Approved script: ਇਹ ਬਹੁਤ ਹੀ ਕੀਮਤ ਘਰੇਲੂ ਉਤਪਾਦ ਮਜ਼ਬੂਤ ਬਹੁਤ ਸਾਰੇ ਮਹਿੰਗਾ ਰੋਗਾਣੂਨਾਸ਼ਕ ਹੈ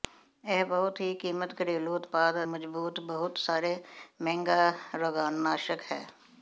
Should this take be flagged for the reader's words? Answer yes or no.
no